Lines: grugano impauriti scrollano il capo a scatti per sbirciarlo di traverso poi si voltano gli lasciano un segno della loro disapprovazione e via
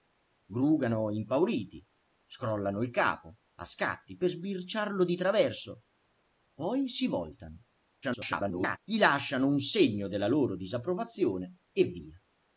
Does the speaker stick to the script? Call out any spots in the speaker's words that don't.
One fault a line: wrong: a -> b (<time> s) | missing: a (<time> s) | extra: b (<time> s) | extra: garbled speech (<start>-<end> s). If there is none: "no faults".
extra: garbled speech (8.0-8.8 s)